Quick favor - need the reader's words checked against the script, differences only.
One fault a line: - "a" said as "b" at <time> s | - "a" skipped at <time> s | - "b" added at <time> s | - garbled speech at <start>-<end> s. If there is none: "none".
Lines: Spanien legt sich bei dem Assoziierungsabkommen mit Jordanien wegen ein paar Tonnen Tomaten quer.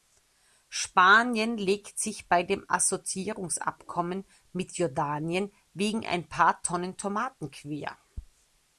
none